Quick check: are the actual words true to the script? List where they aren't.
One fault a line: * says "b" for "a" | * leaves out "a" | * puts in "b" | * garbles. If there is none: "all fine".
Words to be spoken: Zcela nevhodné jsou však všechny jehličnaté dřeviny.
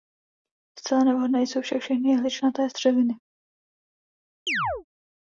all fine